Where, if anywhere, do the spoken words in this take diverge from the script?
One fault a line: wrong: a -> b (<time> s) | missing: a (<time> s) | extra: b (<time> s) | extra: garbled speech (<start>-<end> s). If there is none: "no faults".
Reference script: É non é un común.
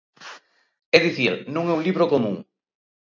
extra: dicir (1.1 s)
extra: libro (1.9 s)